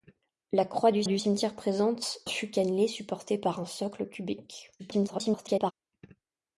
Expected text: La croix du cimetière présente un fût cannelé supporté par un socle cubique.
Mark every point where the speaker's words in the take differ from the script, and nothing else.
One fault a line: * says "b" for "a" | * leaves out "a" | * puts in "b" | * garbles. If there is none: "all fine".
* puts in "du"
* leaves out "un"
* garbles